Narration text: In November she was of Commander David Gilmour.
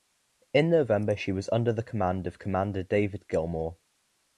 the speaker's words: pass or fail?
fail